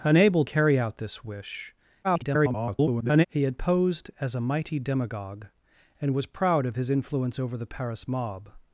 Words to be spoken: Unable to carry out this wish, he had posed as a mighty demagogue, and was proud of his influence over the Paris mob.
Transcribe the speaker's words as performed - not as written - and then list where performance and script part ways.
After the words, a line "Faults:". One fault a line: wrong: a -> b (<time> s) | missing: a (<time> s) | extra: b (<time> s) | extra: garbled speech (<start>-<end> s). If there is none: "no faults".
Unable carry out this wish, [garbled] he had posed as a mighty demagogue, and was proud of his influence over the Paris mob.
Faults:
missing: to (0.5 s)
extra: garbled speech (2.0-3.3 s)